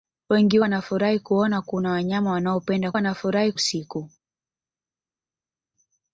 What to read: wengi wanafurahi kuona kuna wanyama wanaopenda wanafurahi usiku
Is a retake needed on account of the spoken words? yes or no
no